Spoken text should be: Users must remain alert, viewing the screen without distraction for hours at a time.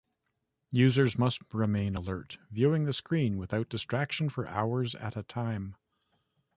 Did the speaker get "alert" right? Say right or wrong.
right